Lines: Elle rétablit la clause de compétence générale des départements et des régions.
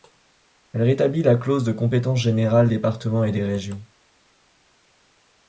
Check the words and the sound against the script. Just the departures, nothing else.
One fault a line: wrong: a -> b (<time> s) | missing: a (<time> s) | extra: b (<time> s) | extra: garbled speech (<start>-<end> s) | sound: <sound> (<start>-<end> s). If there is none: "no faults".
missing: des (2.7 s)